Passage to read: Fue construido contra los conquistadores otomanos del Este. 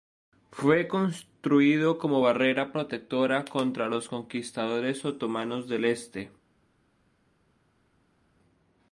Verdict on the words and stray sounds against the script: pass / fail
fail